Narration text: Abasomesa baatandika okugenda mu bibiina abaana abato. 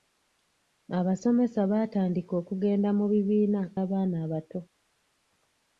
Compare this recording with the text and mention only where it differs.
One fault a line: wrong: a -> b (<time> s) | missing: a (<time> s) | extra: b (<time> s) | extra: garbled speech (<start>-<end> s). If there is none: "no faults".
no faults